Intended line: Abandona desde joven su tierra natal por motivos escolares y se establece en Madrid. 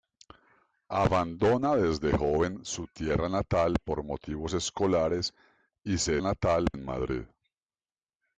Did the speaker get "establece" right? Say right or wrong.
wrong